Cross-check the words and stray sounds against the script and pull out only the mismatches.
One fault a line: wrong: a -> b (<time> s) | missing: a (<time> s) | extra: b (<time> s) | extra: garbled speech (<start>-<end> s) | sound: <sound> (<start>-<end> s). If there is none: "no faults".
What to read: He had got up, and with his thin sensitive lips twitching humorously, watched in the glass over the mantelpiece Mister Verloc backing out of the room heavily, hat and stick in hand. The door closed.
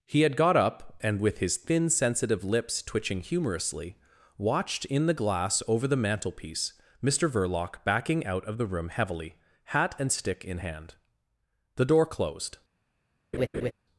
sound: laugh (13.3-13.7 s)